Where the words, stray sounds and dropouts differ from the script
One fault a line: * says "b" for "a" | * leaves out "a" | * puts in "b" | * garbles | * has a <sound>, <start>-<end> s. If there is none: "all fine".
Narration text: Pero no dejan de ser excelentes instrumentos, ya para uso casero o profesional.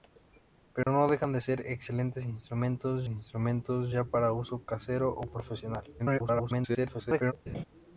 * has a dropout, 0.8-0.9 s
* puts in "instrumentos"
* garbles
* has a laugh, 7.5-7.6 s